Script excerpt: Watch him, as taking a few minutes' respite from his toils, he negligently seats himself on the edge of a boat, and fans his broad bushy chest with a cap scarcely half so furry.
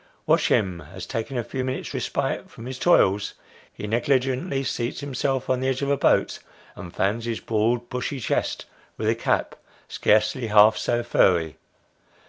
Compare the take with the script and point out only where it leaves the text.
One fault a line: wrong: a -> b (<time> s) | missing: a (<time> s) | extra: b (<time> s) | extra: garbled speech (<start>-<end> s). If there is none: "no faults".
no faults